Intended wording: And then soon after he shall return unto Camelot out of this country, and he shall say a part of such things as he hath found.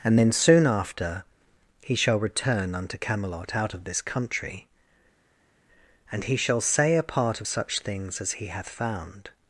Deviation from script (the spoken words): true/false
false